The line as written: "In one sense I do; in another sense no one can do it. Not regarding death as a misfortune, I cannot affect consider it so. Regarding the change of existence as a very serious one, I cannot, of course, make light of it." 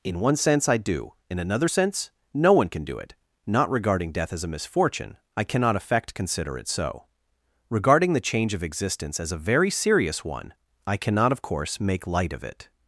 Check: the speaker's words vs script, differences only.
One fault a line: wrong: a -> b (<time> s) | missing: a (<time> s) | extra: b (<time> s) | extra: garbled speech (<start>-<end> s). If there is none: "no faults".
no faults